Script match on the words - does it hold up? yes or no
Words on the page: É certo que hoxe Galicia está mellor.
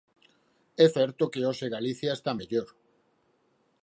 yes